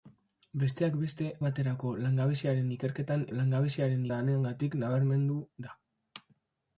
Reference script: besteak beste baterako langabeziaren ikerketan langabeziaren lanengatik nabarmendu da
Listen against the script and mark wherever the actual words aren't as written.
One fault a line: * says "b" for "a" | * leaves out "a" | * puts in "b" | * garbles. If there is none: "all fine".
all fine